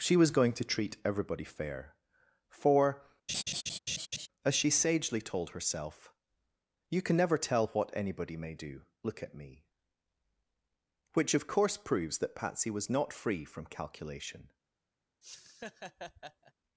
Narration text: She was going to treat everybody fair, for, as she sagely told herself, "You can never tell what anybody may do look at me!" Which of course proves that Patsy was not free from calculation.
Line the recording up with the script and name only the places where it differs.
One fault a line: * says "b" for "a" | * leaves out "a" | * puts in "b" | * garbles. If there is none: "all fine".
all fine